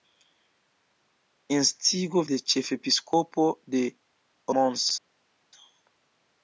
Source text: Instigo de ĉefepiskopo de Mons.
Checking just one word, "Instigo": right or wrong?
right